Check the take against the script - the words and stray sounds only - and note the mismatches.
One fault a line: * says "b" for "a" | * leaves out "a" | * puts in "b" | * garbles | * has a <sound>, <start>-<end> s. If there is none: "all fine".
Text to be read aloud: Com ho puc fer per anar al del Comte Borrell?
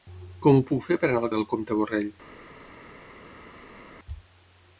all fine